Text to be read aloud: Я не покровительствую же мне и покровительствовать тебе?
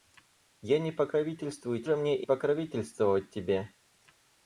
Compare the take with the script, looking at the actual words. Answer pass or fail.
pass